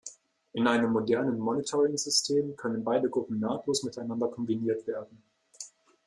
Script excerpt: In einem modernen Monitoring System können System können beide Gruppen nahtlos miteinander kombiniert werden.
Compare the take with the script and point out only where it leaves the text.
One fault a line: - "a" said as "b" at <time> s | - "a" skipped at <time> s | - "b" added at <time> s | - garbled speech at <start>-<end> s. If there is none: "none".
- "System können" skipped at 2.8 s